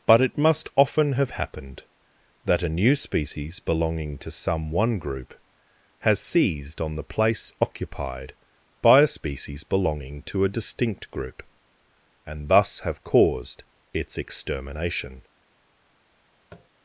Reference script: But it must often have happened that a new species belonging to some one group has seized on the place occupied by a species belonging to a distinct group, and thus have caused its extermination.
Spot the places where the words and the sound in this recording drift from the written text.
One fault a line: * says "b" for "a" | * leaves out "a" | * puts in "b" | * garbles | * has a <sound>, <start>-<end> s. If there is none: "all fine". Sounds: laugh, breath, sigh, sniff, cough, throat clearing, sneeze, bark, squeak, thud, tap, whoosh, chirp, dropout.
* has a tap, 16.5-16.7 s